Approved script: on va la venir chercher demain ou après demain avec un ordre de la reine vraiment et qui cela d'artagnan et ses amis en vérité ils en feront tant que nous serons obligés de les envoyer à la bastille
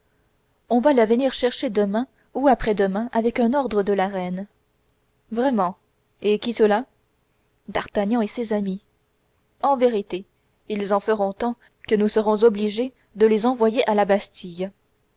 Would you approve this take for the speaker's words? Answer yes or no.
yes